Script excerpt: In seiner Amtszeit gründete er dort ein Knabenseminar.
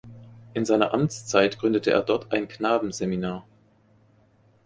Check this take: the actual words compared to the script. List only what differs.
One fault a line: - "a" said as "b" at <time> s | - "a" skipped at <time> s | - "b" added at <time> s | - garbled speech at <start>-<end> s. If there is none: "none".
none